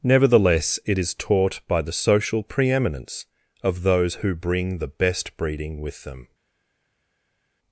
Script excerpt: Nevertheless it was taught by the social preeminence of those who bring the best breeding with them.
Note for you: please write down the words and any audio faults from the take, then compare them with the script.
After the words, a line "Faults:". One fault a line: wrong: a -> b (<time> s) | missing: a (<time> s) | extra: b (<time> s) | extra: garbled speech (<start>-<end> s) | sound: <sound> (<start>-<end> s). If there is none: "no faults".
Nevertheless it is taught by the social preeminence of those who bring the best breeding with them.
Faults:
wrong: was -> is (1.0 s)